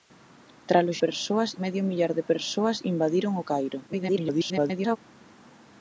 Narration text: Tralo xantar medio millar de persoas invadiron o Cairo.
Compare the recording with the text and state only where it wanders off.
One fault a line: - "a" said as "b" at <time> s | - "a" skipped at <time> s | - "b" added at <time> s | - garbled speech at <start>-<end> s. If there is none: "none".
- "xantar" said as "persoas" at 1.0 s
- garbled speech at 3.9-5.0 s